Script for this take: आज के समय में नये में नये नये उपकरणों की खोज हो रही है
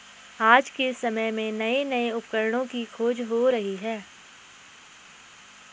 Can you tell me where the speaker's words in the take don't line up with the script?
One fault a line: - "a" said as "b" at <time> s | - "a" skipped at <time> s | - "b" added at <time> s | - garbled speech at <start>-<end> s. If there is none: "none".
- "में नये" skipped at 1.8 s